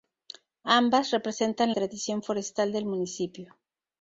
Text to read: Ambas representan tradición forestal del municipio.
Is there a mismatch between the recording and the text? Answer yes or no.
no